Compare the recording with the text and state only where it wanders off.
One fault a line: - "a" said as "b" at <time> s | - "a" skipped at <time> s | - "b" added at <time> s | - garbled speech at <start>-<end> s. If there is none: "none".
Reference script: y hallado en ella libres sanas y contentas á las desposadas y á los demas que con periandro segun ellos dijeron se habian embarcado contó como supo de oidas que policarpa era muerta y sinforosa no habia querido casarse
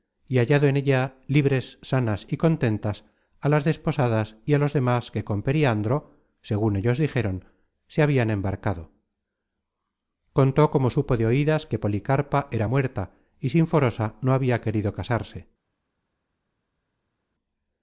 none